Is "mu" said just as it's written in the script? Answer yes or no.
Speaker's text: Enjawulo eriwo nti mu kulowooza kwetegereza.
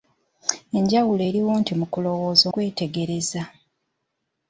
yes